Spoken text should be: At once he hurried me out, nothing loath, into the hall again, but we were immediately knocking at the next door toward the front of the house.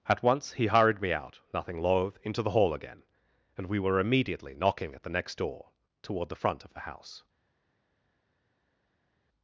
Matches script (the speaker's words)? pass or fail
fail